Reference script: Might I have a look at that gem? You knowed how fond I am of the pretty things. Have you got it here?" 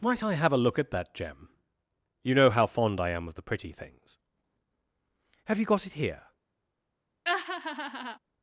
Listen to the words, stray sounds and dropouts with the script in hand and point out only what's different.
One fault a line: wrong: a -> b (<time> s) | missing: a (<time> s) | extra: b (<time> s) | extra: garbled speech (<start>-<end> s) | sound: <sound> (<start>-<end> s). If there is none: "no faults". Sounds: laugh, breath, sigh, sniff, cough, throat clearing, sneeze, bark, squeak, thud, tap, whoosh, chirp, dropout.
wrong: knowed -> know (2.3 s)
sound: laugh (7.2-8.2 s)